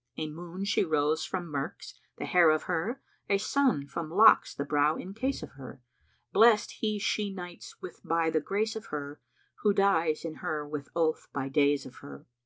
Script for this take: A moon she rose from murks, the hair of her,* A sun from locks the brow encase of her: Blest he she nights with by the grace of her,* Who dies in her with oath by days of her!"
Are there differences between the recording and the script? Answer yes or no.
no